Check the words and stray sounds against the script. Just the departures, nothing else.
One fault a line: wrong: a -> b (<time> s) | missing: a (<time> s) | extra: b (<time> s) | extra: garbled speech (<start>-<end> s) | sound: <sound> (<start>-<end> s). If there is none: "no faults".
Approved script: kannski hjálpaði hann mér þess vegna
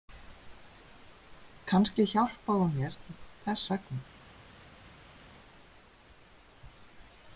wrong: hann -> hún (2.6 s)